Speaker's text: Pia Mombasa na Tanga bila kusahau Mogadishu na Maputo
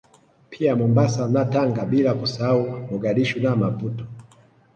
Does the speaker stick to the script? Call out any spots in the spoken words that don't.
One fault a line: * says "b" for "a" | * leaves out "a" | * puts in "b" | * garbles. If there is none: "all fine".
all fine